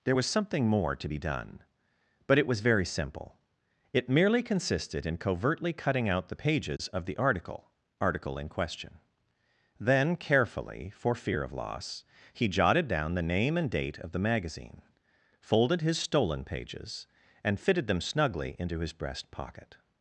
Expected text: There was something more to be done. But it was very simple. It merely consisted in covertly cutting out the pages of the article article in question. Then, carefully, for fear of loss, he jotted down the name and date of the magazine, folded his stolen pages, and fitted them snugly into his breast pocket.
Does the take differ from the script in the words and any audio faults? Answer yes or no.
yes